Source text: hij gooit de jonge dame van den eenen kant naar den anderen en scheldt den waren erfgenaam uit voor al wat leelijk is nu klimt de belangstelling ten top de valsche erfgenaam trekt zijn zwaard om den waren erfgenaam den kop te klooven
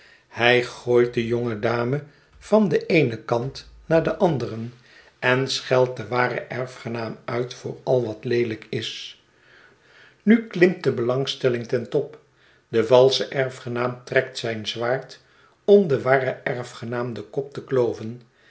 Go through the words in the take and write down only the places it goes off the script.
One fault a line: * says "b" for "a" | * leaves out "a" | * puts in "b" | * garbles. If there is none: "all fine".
all fine